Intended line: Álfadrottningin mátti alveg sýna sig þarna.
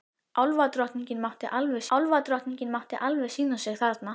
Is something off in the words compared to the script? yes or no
yes